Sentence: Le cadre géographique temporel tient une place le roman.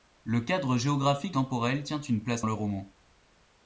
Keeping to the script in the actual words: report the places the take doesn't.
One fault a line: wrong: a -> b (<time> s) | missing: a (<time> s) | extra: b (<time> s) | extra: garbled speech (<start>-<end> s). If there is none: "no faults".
no faults